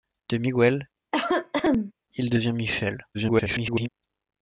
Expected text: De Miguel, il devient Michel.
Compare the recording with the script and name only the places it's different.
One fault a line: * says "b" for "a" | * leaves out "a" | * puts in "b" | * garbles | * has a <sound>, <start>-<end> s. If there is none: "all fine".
* has a cough, 1.1-1.9 s
* garbles